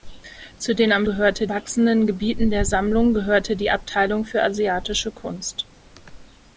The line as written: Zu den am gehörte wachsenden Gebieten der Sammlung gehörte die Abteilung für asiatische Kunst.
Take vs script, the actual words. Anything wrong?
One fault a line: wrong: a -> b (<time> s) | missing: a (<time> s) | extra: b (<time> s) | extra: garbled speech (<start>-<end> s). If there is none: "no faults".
no faults